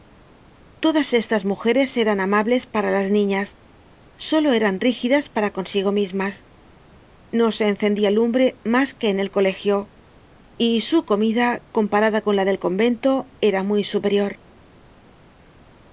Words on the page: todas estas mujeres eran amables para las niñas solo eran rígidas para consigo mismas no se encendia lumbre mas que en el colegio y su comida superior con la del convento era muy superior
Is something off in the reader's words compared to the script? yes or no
yes